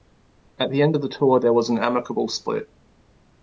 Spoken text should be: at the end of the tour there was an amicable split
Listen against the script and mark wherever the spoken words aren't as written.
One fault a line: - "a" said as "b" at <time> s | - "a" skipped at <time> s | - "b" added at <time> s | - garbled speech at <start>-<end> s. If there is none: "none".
none